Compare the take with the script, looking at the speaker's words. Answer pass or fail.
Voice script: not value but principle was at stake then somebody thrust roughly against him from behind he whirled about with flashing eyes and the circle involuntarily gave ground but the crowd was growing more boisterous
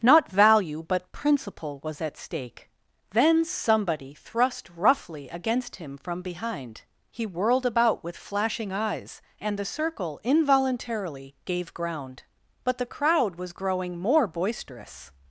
pass